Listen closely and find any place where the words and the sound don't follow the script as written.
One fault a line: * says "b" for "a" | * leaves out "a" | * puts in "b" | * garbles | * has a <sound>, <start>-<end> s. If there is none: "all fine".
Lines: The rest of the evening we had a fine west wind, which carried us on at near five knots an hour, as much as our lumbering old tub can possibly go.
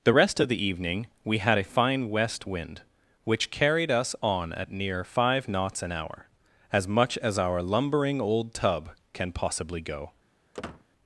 * has a squeak, 10.5-10.9 s